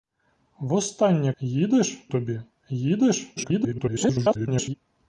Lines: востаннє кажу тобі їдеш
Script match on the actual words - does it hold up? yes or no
no